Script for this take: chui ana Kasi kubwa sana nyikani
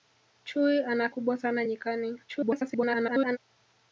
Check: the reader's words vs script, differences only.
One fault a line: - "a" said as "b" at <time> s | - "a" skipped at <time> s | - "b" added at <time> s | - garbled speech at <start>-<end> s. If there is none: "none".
- "Kasi" skipped at 1.1 s
- garbled speech at 2.3-3.4 s